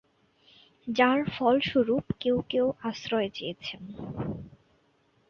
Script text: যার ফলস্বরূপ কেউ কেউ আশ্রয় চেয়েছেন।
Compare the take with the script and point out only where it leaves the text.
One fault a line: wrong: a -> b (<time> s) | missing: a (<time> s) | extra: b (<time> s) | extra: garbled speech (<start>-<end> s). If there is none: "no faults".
no faults